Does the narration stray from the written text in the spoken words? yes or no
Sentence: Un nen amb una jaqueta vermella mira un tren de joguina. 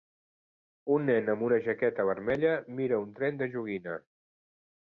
no